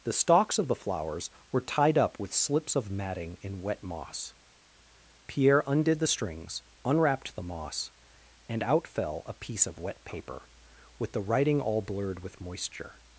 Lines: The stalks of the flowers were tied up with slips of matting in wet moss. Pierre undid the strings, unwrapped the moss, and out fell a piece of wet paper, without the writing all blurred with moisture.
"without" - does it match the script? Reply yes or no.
no